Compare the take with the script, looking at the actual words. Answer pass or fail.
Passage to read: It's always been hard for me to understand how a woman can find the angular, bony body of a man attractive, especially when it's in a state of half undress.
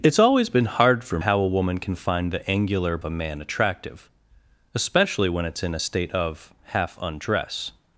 fail